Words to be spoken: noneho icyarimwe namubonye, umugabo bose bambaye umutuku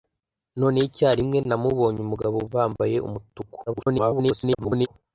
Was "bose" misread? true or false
true